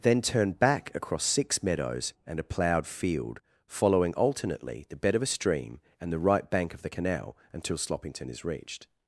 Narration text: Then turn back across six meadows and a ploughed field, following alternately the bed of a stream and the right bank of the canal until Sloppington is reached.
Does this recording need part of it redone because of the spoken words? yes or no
no